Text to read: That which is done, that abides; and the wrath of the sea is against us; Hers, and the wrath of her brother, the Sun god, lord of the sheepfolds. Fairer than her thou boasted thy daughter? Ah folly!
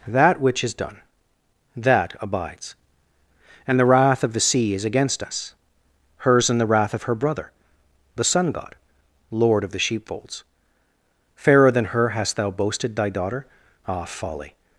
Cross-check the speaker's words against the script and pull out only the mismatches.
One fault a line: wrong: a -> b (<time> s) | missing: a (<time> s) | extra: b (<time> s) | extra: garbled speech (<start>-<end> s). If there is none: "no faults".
extra: hast (12.1 s)